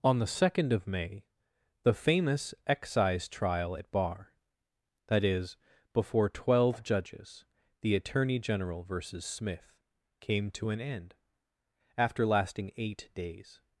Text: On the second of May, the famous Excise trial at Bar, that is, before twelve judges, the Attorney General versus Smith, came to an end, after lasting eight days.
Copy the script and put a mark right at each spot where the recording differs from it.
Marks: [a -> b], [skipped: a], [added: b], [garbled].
On the second of May, the famous Excise trial at Bar, that is, before twelve judges, the Attorney General versus Smith, came to an end, after lasting eight days.